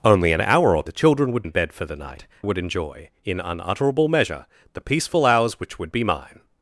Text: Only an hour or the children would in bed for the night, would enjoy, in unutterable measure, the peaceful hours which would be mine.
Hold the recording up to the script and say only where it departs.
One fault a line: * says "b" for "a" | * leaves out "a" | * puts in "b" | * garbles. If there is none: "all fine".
all fine